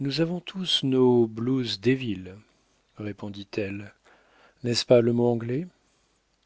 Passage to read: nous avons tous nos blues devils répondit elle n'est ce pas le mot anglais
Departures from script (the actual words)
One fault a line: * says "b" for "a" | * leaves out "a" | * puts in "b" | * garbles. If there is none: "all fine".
all fine